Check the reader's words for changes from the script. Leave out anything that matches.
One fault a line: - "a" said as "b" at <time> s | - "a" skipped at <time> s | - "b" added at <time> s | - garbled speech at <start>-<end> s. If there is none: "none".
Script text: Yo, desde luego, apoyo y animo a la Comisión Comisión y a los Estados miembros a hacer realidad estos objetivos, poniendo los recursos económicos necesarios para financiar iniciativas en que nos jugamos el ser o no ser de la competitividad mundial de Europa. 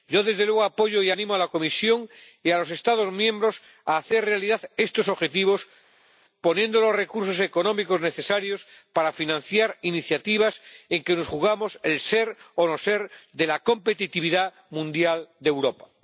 - "Comisión" skipped at 2.1 s